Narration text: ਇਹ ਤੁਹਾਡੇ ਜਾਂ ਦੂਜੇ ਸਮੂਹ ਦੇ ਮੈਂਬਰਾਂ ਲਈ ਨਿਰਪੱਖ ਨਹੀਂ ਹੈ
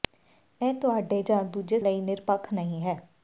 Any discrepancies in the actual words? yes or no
yes